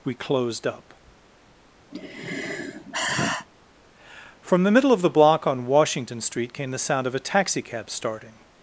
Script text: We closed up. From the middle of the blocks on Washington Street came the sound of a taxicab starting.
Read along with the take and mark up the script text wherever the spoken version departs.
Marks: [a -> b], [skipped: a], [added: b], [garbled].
We closed up. From the middle of the [blocks -> block] on Washington Street came the sound of a taxicab starting.